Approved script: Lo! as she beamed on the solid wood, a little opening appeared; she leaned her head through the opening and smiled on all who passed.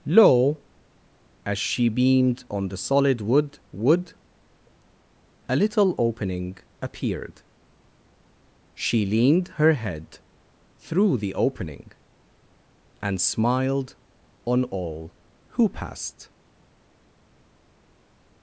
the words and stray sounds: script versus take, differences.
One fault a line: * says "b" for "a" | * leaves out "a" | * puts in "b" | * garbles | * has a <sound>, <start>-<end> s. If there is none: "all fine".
* puts in "wood"